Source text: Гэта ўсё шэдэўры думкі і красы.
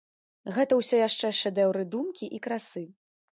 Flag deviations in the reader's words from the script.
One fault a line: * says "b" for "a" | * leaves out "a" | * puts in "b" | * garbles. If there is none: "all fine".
* puts in "яшчэ"